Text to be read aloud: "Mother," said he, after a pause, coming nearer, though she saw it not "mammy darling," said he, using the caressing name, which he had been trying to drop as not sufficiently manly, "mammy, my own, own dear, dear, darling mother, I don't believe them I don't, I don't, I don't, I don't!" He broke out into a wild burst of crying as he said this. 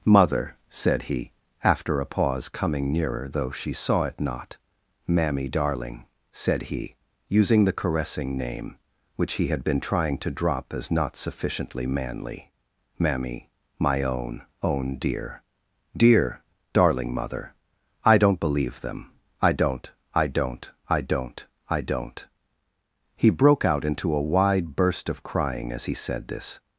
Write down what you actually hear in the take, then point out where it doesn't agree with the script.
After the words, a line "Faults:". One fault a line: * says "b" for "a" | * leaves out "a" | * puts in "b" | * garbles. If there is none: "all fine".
"Mother," said he, after a pause, coming nearer, though she saw it not "mammy darling," said he, using the caressing name, which he had been trying to drop as not sufficiently manly, "mammy, my own, own dear, dear, darling mother, I don't believe them I don't, I don't, I don't, I don't!" He broke out into a wide burst of crying as he said this.
Faults:
* says "wide" for "wild"